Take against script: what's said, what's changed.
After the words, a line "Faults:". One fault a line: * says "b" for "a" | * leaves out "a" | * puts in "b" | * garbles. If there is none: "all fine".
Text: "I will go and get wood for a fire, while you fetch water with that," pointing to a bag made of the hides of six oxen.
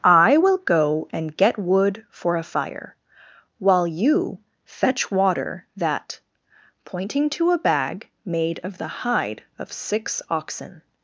"I will go and get wood for a fire, while you fetch water that," pointing to a bag made of the hide of six oxen.
Faults:
* leaves out "with"
* says "hide" for "hides"